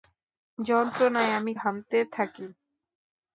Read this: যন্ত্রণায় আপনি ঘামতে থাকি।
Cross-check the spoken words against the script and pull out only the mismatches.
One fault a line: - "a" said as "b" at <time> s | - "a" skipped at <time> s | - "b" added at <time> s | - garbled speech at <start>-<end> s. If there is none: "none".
- "আপনি" said as "আমি" at 1.3 s